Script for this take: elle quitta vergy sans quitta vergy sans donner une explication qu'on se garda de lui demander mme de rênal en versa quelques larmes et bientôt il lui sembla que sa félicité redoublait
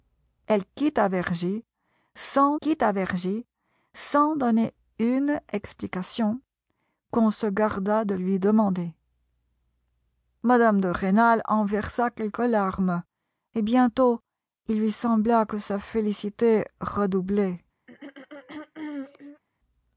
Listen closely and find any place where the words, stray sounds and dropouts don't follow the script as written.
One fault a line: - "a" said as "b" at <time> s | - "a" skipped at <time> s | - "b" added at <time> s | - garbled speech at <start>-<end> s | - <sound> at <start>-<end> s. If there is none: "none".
- throat clearing at 17.9-19.4 s